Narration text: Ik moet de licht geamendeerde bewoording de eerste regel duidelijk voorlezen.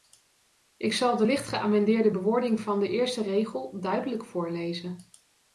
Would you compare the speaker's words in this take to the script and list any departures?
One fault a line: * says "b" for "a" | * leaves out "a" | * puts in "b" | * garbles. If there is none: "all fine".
* says "zal" for "moet"
* puts in "van"